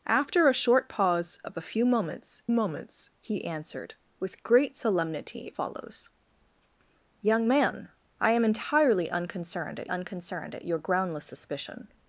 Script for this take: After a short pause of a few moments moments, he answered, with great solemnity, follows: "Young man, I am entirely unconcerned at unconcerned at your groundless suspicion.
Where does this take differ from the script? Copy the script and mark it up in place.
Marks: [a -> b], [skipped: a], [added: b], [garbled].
After a short pause of a few moments moments, he answered, with great solemnity, follows: "Young man, I am entirely unconcerned at unconcerned at your groundless suspicion.